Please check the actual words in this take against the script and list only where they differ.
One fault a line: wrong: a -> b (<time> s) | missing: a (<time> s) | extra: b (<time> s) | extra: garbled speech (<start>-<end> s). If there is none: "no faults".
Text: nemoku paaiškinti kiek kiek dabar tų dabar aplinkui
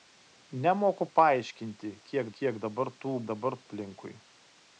no faults